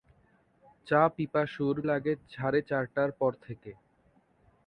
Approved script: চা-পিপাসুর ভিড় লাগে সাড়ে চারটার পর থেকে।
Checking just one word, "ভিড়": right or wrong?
wrong